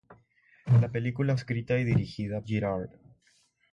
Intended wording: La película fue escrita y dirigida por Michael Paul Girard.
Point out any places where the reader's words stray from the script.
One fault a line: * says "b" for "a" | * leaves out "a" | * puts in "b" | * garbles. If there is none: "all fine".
* leaves out "fue"
* leaves out "por Michael Paul"